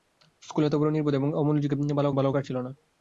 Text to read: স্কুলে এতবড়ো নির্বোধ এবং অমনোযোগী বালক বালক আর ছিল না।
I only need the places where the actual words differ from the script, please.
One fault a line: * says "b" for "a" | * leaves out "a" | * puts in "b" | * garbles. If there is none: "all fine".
all fine